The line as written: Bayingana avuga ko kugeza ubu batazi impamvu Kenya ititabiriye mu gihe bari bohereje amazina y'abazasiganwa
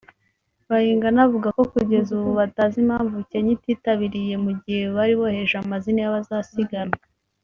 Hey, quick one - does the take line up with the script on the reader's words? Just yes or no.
yes